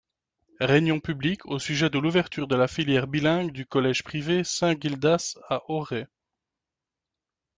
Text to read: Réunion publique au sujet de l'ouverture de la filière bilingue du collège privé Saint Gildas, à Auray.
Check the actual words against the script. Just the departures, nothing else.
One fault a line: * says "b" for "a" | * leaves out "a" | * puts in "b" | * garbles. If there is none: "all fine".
all fine